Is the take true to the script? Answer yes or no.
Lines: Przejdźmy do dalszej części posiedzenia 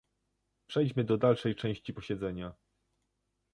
yes